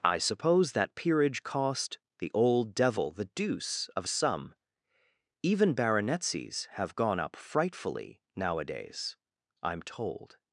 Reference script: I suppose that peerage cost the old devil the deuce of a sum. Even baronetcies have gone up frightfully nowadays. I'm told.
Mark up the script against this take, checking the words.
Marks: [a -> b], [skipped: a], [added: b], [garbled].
I suppose that peerage cost the old devil the deuce of [a sum. -> some] Even baronetcies have gone up frightfully nowadays. I'm told.